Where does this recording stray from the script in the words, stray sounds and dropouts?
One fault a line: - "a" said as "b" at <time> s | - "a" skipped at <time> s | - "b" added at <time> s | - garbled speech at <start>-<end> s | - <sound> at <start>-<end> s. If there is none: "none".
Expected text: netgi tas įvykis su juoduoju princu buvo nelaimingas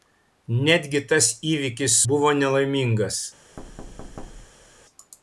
- "su juoduoju princu" skipped at 2.0 s
- thud at 3.6-4.8 s